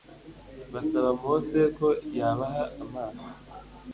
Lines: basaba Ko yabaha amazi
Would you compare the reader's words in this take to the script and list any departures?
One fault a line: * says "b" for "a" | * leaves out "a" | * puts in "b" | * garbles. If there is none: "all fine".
* puts in "Mose"